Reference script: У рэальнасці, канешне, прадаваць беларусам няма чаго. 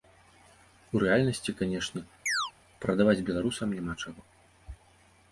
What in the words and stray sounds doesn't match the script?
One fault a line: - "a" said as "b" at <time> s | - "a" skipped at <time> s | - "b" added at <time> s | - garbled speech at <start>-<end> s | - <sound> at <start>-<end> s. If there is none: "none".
- chirp at 2.3-2.5 s